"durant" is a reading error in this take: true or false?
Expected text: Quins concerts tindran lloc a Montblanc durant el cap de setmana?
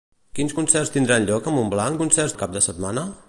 true